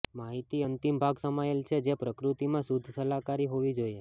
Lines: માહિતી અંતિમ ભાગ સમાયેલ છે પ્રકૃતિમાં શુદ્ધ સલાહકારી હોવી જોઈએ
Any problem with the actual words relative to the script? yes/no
yes